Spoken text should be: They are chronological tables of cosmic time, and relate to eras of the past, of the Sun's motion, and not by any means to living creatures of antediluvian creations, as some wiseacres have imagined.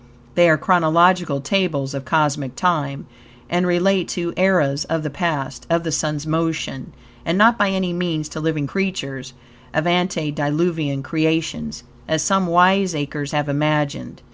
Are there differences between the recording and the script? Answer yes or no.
no